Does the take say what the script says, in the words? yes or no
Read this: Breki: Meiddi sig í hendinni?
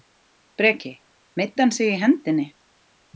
no